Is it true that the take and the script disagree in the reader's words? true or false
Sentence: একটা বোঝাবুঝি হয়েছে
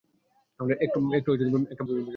false